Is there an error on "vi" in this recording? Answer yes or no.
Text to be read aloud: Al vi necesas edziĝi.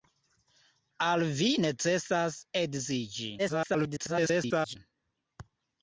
no